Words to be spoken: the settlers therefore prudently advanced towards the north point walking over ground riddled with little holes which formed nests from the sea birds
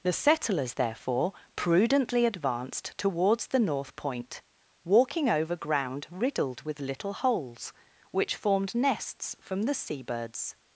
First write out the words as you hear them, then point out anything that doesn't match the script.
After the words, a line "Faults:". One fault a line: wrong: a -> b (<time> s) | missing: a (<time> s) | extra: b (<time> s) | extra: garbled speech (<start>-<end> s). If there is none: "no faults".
the settlers therefore prudently advanced towards the north point walking over ground riddled with little holes which formed nests from the sea birds
Faults:
no faults